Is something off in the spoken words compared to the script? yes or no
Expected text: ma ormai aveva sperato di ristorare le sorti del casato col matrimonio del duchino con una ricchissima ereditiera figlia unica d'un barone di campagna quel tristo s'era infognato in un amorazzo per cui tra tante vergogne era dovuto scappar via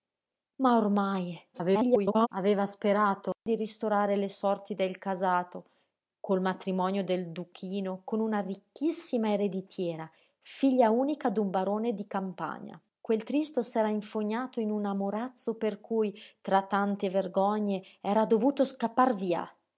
yes